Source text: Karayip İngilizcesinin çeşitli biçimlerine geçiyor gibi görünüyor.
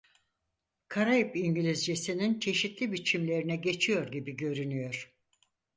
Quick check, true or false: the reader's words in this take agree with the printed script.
true